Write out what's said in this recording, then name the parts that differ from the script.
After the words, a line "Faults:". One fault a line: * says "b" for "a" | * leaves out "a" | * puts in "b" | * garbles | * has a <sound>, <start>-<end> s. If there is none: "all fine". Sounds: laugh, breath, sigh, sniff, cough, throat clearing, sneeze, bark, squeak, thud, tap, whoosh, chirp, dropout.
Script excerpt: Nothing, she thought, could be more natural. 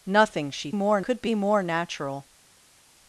Nothing, she more, could be more natural.
Faults:
* says "more" for "thought"